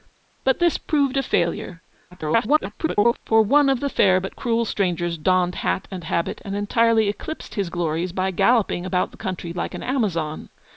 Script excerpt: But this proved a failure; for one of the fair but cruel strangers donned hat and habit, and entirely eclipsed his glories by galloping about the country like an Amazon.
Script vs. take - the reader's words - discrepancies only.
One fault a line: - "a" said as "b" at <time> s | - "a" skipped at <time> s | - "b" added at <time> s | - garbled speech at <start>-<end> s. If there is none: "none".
- garbled speech at 2.1-3.2 s